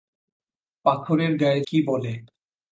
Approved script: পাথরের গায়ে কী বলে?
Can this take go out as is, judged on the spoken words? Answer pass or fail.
pass